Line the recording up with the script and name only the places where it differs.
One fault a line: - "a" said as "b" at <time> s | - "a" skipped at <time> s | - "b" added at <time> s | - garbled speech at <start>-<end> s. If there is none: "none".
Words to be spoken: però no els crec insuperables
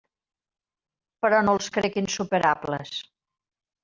none